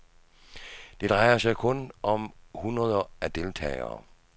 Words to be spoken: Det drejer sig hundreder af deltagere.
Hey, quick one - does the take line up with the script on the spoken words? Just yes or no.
no